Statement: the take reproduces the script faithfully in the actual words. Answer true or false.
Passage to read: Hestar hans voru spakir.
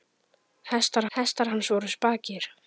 false